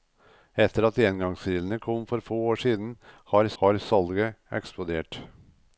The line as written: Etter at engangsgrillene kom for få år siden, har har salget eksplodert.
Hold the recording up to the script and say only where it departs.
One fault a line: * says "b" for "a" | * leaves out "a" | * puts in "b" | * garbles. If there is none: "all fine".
all fine